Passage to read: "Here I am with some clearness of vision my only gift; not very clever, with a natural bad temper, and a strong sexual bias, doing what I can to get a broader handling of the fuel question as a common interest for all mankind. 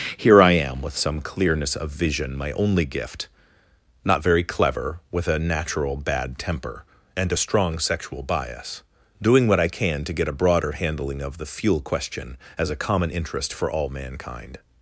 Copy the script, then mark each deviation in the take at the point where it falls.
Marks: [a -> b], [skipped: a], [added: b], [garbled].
"Here I am with some clearness of vision my only gift; not very clever, with a natural bad temper, and a strong sexual bias, doing what I can to get a broader handling of the fuel question as a common interest for all mankind.